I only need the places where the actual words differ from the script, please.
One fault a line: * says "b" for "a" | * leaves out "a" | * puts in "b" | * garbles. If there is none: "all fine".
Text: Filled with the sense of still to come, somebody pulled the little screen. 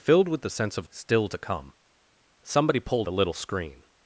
all fine